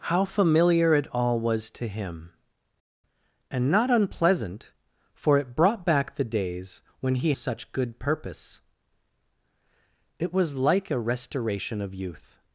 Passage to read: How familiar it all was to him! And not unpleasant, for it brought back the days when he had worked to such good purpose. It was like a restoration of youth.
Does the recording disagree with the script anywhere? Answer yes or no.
yes